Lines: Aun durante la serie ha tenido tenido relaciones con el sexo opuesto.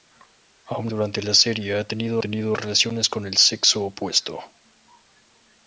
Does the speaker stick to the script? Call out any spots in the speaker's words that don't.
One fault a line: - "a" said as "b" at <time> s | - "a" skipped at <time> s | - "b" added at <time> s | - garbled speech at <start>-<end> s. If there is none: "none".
none